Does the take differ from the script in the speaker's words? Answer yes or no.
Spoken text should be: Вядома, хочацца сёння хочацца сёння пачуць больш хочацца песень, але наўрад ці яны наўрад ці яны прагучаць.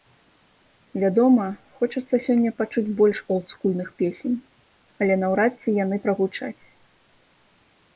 yes